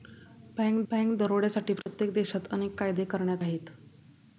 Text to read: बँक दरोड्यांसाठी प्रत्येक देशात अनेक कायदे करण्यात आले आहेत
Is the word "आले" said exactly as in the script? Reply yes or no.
no